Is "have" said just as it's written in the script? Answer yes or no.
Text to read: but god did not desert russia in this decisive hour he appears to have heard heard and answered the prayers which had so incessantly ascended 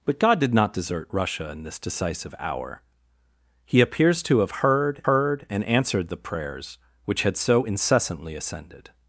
yes